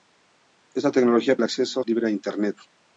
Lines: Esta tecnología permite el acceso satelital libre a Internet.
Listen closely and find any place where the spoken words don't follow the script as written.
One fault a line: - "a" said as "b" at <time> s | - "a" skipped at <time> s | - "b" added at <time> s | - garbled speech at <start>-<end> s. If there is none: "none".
- "permite" skipped at 1.4 s
- "satelital" skipped at 1.8 s